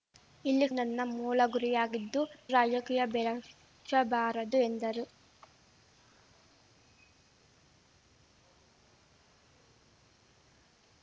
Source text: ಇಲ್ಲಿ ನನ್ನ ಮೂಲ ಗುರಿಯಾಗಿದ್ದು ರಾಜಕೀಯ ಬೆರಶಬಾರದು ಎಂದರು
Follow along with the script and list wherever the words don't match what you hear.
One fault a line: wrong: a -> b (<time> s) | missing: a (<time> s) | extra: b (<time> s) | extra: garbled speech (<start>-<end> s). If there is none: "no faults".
no faults